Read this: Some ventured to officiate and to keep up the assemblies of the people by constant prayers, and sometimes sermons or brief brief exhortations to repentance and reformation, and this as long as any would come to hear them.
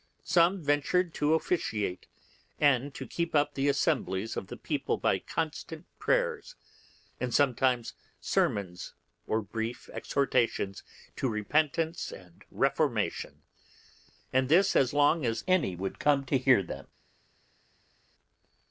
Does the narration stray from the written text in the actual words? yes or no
yes